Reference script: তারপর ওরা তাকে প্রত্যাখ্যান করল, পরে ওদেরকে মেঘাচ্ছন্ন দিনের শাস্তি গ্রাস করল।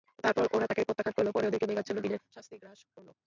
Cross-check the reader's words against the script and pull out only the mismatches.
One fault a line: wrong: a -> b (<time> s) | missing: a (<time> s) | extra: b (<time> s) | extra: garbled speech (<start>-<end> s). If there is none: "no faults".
no faults